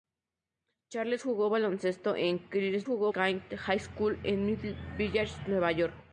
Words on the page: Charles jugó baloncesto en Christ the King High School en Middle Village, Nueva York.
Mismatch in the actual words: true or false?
true